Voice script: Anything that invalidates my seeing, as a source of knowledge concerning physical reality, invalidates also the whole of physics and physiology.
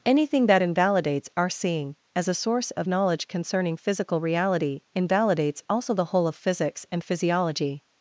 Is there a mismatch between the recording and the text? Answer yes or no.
yes